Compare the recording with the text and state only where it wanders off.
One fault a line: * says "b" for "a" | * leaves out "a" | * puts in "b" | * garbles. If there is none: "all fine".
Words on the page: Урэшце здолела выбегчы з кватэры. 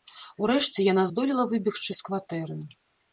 * puts in "яна"